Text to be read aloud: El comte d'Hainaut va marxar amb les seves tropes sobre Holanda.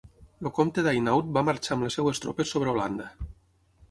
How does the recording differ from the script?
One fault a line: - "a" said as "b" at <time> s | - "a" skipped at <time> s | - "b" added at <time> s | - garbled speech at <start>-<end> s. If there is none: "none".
none